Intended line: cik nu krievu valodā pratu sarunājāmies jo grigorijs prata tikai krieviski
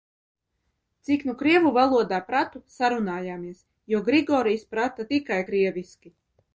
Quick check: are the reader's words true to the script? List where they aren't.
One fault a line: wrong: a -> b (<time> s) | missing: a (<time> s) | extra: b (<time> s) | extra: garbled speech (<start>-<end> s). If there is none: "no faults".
no faults